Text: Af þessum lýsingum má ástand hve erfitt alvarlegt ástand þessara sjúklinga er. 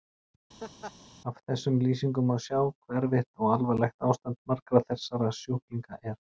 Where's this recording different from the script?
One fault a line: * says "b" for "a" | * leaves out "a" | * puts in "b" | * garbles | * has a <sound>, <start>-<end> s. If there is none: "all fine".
* has a laugh, 0.6-0.9 s
* says "sjá" for "ástand"
* puts in "og"
* puts in "margra"